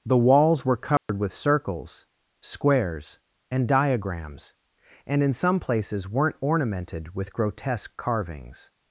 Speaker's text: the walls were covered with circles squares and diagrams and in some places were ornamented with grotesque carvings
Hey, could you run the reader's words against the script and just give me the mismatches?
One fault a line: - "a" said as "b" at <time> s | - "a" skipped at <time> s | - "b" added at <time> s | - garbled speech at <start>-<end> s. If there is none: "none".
- "were" said as "weren't" at 6.1 s